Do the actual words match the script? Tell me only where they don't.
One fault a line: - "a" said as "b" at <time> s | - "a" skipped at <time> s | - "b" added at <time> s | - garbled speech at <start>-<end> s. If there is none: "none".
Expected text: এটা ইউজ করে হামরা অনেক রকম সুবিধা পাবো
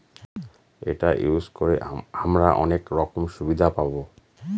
none